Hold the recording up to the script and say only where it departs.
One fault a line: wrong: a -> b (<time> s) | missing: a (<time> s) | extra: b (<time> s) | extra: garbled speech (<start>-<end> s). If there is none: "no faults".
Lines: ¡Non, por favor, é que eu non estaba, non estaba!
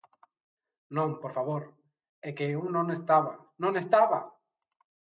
no faults